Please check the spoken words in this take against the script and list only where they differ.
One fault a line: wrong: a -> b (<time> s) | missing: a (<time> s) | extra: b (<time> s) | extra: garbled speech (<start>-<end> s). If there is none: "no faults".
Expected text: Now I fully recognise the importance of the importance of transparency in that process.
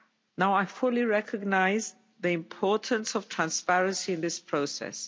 missing: the importance of (3.3 s)
wrong: that -> this (4.2 s)